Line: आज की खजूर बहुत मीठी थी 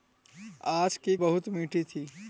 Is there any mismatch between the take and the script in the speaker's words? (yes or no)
yes